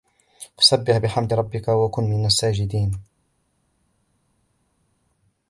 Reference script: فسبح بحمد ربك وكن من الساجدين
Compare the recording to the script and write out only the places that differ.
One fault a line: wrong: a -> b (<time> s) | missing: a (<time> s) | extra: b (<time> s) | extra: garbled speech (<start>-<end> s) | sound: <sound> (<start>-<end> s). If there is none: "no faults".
no faults